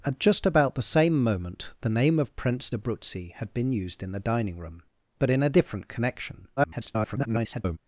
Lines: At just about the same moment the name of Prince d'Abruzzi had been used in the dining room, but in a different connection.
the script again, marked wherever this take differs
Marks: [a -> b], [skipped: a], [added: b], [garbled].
At just about the same moment the name of Prince d'Abruzzi had been used in the dining room, but in a different connection. [garbled]